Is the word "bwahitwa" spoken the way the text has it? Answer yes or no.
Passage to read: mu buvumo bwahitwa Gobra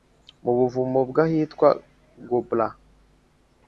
yes